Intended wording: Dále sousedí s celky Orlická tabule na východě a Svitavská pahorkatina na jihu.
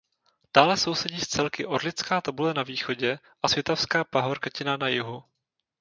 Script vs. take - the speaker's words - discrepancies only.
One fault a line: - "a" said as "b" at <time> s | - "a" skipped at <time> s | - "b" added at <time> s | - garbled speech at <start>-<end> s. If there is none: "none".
none